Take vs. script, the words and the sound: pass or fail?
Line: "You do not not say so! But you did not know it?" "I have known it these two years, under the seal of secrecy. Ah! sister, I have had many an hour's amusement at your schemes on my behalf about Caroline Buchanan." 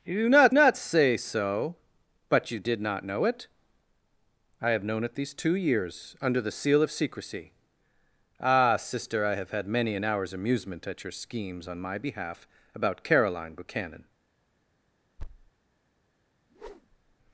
fail